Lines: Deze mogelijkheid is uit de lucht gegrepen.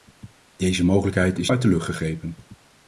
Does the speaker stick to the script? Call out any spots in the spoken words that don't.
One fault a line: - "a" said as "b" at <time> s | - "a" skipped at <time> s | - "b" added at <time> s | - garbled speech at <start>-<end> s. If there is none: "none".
none